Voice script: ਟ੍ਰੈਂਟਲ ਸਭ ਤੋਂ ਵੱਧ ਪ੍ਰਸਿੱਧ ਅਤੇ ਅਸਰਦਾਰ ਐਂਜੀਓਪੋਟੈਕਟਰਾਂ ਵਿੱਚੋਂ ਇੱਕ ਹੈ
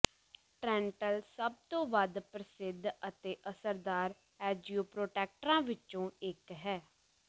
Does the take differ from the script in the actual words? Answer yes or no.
no